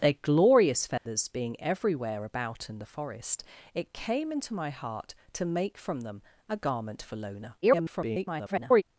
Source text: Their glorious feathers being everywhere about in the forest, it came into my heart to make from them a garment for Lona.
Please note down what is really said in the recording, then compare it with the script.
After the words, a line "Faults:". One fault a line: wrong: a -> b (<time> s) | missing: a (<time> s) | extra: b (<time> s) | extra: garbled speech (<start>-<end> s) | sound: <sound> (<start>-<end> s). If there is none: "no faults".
Their glorious feathers being everywhere about in the forest, it came into my heart to make from them a garment for Lona. [garbled]
Faults:
sound: dropout (1.0-1.1 s)
extra: garbled speech (7.6-8.8 s)